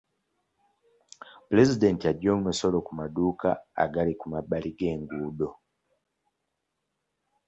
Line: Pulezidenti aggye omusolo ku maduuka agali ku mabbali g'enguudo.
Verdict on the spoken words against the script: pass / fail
pass